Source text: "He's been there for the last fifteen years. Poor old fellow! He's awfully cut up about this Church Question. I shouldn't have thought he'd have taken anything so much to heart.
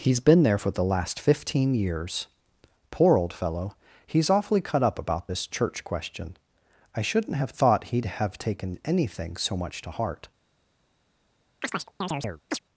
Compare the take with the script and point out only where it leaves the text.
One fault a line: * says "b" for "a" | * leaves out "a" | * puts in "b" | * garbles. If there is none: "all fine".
all fine